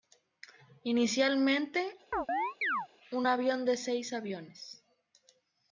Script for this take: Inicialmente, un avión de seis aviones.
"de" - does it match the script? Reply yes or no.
yes